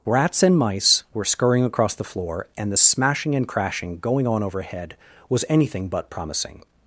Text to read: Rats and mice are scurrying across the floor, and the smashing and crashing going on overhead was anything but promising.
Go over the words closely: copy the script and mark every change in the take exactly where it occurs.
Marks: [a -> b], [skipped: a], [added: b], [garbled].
Rats and mice [are -> were] scurrying across the floor, and the smashing and crashing going on overhead was anything but promising.